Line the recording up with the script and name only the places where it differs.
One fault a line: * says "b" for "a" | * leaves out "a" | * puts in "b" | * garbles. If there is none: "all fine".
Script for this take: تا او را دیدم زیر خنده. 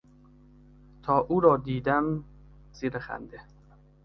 all fine